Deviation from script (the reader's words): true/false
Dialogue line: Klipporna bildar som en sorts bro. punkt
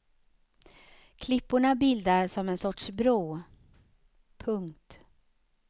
false